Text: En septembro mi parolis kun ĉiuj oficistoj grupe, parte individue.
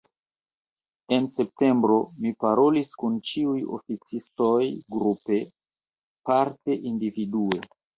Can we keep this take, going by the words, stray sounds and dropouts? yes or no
yes